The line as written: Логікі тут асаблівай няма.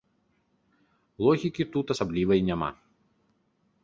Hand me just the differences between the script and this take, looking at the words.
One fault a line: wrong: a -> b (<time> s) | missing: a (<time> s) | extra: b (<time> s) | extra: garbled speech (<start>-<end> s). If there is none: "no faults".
no faults